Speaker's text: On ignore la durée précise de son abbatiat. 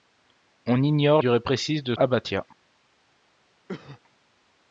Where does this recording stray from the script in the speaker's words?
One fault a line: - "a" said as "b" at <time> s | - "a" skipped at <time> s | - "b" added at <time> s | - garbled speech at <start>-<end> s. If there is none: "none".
- "la" skipped at 1.2 s
- "son" skipped at 1.9 s